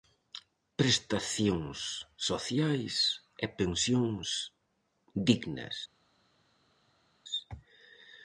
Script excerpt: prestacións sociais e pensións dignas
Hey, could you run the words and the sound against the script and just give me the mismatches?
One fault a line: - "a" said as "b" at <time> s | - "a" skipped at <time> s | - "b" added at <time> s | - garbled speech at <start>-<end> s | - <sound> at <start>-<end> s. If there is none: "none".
none